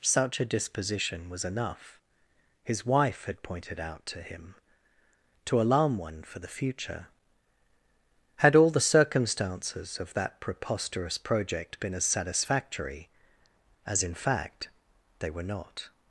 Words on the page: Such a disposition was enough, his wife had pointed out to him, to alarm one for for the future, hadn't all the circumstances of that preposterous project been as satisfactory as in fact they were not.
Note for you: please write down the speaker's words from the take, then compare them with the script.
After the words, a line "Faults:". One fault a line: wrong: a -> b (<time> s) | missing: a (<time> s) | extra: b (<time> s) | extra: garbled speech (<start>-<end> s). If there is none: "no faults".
Such a disposition was enough, his wife had pointed out to him, to alarm one for the future, had all the circumstances of that preposterous project been as satisfactory as in fact they were not.
Faults:
missing: for (6.4 s)
wrong: hadn't -> had (8.4 s)